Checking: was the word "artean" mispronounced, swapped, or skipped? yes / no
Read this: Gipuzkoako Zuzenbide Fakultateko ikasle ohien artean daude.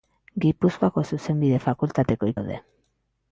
yes